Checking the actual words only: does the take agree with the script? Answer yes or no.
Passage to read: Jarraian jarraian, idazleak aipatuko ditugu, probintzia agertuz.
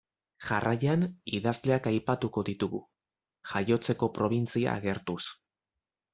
no